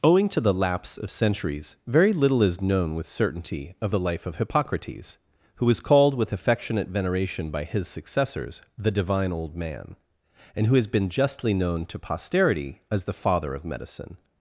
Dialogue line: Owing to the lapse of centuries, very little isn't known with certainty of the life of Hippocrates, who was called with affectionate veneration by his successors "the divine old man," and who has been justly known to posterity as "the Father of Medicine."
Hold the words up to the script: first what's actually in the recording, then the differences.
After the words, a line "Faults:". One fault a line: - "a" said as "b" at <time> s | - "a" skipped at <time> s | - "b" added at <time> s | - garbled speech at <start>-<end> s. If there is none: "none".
Owing to the lapse of centuries, very little is known with certainty of the life of Hippocrates, who was called with affectionate veneration by his successors "the divine old man," and who has been justly known to posterity as "the Father of Medicine."
Faults:
- "isn't" said as "is" at 2.4 s